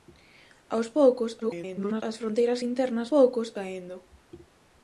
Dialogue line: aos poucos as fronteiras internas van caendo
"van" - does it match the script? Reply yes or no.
no